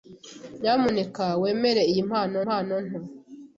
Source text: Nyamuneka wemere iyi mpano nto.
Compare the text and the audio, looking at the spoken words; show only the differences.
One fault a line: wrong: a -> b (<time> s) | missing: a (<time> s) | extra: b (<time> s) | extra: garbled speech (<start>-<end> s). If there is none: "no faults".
extra: mpano (2.4 s)